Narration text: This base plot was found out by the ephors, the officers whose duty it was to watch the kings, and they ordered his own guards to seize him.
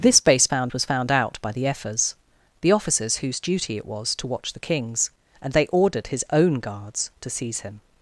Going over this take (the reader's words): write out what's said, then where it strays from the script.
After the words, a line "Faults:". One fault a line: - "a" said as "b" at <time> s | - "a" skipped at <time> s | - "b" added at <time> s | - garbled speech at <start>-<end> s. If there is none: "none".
This base found was found out by the ephors, the officers whose duty it was to watch the kings, and they ordered his own guards to seize him.
Faults:
- "plot" said as "found" at 0.5 s